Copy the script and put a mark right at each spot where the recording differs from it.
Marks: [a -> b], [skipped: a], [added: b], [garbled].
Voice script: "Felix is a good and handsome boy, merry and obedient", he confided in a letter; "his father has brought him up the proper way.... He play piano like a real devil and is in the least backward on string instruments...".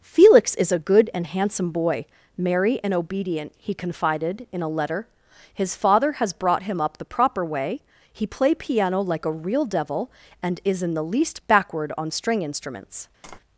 "Felix is a good and handsome boy, merry and obedient", he confided in a letter; "his father has brought him up the proper way.... He play piano like a real devil and is in the least backward on string instruments...".